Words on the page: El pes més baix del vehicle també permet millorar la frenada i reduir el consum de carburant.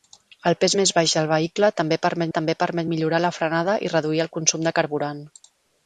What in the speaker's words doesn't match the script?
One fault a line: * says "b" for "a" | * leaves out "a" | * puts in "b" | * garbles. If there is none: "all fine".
* puts in "també permet"